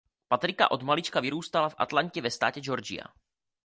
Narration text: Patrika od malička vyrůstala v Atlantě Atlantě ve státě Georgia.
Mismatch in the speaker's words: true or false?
true